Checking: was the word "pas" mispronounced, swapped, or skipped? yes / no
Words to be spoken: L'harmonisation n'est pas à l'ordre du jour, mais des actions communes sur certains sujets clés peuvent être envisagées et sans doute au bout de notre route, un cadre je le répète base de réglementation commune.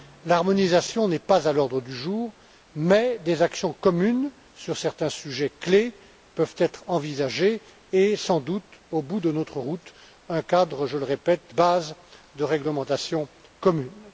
no